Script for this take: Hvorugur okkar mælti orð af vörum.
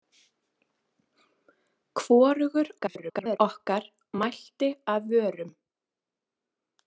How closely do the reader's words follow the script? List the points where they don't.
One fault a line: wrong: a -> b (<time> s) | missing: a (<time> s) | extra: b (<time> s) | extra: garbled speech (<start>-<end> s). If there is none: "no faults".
extra: garbled speech (2.8-3.4 s)
missing: orð (4.7 s)